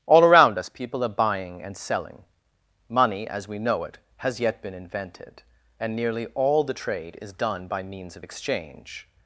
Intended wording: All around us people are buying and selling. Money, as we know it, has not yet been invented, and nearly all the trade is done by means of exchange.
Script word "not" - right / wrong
wrong